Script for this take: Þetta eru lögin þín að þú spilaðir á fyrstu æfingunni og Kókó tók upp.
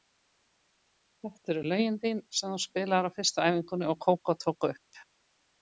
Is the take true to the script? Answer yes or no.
no